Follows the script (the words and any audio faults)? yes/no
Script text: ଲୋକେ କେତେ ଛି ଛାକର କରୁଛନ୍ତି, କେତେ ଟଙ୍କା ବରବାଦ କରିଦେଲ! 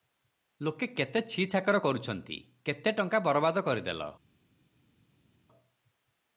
yes